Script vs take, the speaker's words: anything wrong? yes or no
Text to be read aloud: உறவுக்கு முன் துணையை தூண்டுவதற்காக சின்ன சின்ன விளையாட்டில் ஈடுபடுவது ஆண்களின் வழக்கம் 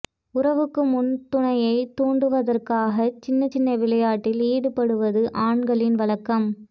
no